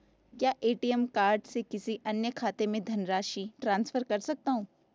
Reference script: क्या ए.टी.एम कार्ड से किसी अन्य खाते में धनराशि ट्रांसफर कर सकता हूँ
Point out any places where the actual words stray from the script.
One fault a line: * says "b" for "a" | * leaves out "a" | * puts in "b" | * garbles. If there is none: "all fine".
all fine